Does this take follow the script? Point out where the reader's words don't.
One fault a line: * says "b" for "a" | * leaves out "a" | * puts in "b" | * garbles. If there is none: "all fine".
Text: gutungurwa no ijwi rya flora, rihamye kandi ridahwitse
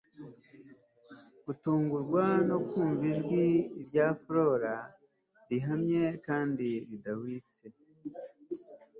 * puts in "kumva"